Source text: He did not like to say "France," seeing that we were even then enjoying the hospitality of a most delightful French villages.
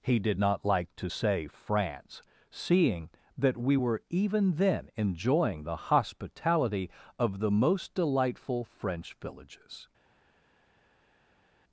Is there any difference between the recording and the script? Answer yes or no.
yes